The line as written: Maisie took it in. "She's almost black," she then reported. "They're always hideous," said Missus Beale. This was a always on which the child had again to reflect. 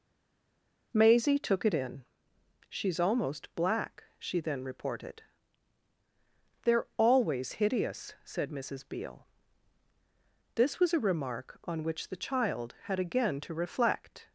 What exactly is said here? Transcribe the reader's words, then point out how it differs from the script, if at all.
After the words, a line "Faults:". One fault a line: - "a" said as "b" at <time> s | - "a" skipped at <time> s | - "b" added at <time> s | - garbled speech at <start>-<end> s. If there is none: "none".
Maisie took it in. "She's almost black," she then reported. "They're always hideous," said Missus Beale. This was a remark on which the child had again to reflect.
Faults:
- "always" said as "remark" at 11.1 s